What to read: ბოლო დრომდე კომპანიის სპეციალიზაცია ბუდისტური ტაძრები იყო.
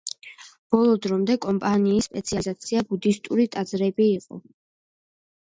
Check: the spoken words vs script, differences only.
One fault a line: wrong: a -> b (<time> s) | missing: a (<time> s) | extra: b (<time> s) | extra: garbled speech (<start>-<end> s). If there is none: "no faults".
no faults